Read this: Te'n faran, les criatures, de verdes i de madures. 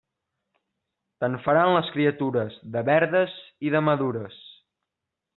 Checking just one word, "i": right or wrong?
right